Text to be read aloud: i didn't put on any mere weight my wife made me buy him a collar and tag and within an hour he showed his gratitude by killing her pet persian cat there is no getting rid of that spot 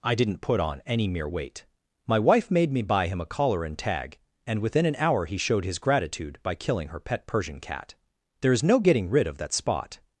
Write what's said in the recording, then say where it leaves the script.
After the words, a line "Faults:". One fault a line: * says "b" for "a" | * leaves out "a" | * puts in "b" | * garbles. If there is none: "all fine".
i didn't put on any mere weight my wife made me buy him a collar and tag and within an hour he showed his gratitude by killing her pet persian cat there is no getting rid of that spot
Faults:
all fine